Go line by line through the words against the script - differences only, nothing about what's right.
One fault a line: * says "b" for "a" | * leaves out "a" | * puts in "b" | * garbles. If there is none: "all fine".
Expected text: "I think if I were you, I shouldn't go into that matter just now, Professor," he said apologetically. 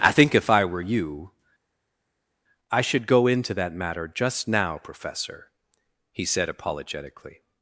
* says "should" for "shouldn't"